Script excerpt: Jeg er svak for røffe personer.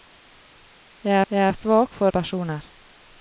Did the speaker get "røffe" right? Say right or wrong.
wrong